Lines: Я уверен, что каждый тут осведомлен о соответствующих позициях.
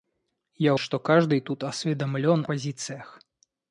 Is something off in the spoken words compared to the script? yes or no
yes